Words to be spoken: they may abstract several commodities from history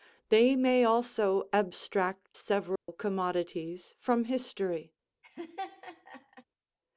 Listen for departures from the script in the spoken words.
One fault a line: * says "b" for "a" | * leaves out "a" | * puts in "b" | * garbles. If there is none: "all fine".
* puts in "also"